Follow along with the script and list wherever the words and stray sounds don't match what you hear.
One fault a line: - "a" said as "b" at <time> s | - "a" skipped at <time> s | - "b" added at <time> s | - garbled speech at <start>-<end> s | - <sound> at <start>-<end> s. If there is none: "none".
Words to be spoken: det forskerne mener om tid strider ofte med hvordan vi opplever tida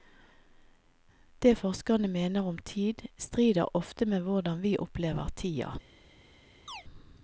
- chirp at 6.7-6.8 s